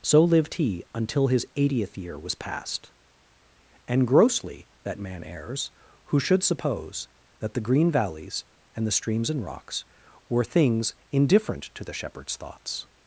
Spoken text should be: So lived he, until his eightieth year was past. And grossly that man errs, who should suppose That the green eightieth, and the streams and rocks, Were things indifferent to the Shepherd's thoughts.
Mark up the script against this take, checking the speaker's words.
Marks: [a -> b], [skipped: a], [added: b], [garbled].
So lived he, until his eightieth year was past. And grossly that man errs, who should suppose That the green [eightieth, -> valleys] and the streams and rocks, Were things indifferent to the Shepherd's thoughts.